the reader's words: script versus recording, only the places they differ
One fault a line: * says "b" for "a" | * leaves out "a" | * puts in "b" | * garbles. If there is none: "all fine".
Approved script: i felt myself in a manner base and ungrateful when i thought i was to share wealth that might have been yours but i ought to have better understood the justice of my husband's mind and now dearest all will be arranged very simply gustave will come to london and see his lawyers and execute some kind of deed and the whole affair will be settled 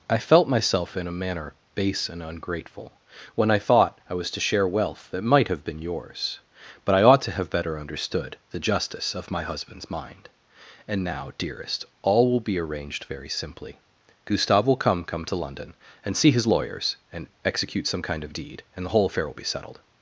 * puts in "come"